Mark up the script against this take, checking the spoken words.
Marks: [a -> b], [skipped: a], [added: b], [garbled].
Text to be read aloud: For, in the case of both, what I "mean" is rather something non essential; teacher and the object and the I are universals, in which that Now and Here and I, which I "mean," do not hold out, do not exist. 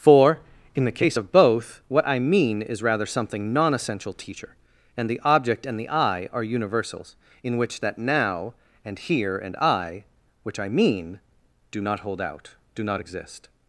For, in the case of both, what I "mean" is rather something non essential; teacher and the object and the I are universals, in which that Now and Here and I, which I "mean," do not hold out, do not exist.